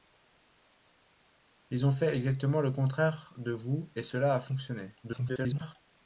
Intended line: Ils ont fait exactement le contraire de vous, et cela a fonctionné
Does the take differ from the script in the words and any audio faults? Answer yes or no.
yes